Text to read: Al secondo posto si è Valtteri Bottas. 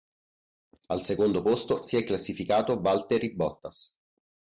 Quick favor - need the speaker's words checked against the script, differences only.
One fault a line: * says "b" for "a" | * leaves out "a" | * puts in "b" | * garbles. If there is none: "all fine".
* puts in "classificato"